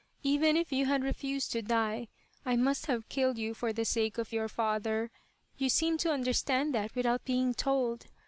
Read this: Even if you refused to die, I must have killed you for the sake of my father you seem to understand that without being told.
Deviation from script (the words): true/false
true